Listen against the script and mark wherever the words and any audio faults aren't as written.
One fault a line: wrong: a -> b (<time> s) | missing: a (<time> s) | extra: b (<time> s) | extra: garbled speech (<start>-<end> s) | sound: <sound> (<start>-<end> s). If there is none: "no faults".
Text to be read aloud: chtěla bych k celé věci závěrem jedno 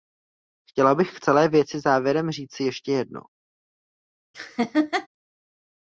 extra: říci ještě (2.3 s)
sound: laugh (4.3-5.1 s)